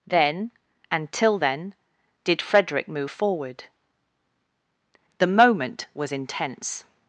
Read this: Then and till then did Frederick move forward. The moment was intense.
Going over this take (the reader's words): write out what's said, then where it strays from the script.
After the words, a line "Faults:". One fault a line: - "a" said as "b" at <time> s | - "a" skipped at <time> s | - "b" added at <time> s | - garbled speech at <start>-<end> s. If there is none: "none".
Then and till then did Frederick move forward. The moment was intense.
Faults:
none